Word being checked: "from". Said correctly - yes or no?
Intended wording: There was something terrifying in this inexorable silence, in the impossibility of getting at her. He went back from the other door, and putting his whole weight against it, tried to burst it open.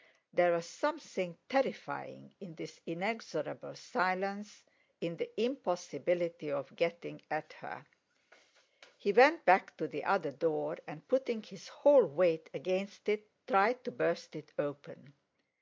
no